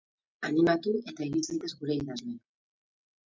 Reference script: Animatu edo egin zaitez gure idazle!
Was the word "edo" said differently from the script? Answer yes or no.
yes